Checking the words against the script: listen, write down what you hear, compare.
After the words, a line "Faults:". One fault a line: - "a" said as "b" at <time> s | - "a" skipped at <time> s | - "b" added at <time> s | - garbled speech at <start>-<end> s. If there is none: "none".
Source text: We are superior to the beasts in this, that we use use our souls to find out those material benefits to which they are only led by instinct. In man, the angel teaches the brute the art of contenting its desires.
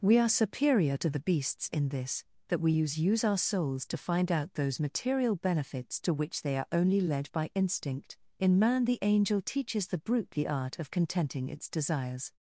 We are superior to the beasts in this, that we use use our souls to find out those material benefits to which they are only led by instinct. In man, the angel teaches the brute the art of contenting its desires.
Faults:
none